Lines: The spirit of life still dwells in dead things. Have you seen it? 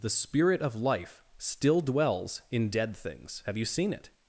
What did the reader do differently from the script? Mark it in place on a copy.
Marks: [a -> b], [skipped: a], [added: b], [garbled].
The spirit of life still dwells in dead things. Have you seen it?